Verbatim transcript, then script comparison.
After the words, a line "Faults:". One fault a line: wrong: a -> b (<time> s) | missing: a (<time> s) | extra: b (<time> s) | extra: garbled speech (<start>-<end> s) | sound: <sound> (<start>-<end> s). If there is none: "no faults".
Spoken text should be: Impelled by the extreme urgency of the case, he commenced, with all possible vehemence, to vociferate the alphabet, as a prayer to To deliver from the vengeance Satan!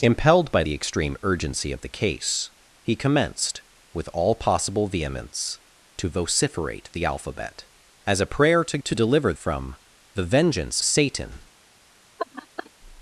Impelled by the extreme urgency of the case, he commenced, with all possible vehemence, to vociferate the alphabet, as a prayer to To deliver from the vengeance Satan!
Faults:
sound: laugh (12.2-12.7 s)